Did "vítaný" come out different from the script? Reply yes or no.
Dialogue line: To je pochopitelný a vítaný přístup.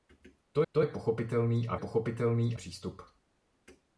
yes